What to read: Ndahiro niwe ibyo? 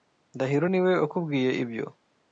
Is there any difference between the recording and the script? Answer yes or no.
yes